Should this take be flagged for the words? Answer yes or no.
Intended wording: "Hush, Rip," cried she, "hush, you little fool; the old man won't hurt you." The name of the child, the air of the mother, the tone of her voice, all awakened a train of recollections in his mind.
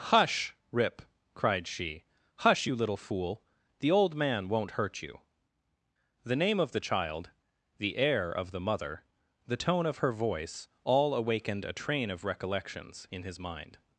no